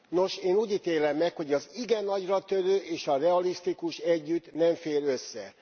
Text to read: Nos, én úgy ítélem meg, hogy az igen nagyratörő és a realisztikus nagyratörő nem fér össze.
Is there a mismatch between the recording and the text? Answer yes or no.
yes